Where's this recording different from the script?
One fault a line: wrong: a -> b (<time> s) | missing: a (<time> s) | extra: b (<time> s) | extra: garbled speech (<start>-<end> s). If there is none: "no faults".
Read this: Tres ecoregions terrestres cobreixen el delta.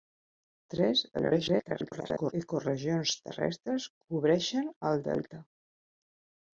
extra: garbled speech (1.1-2.3 s)